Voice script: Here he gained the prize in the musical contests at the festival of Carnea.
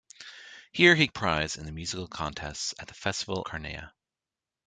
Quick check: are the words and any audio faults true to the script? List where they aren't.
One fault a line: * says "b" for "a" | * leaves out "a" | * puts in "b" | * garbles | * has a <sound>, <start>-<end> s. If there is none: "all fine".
* leaves out "gained"
* leaves out "of"